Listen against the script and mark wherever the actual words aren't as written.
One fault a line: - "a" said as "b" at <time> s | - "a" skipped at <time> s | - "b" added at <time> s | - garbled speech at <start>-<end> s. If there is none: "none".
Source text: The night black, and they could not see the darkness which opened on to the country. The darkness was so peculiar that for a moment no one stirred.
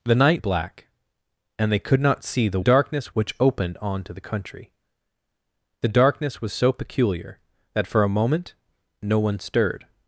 none